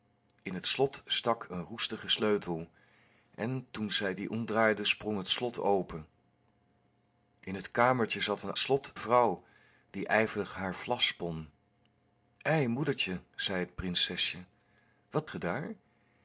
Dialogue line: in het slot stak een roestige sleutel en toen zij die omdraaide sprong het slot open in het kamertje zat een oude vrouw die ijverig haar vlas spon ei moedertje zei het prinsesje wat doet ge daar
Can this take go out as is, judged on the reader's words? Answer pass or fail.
fail